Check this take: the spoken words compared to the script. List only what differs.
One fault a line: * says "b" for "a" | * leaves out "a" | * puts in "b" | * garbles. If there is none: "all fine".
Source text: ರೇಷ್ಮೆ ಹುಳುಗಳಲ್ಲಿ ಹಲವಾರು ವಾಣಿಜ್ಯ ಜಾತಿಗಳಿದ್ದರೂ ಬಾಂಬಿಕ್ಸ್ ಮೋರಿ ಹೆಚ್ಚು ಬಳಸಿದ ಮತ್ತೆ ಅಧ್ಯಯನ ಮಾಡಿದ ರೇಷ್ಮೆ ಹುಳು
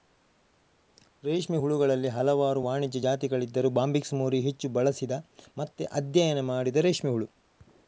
all fine